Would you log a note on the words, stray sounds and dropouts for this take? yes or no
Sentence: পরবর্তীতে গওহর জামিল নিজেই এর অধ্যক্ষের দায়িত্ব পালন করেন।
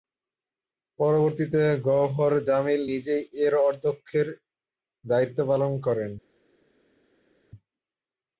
no